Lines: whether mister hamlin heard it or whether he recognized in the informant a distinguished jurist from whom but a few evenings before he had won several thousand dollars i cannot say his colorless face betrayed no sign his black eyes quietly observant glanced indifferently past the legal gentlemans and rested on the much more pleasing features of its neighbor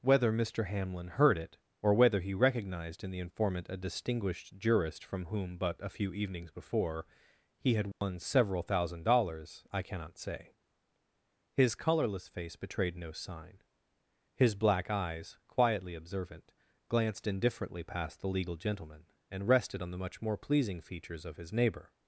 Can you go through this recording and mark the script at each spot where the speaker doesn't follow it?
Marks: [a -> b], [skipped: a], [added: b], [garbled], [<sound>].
whether mister hamlin heard it or whether he recognized in the informant a distinguished jurist from whom but a few evenings before he had won [dropout] several thousand dollars i cannot say his colorless face betrayed no sign his black eyes quietly observant glanced indifferently past the legal [gentlemans -> gentleman] and rested on the much more pleasing features of [its -> his] neighbor